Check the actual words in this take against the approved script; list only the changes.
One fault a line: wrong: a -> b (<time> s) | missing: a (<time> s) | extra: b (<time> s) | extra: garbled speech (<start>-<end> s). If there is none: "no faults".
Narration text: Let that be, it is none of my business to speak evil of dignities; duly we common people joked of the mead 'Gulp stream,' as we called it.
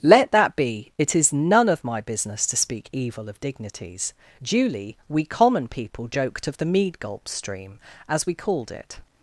no faults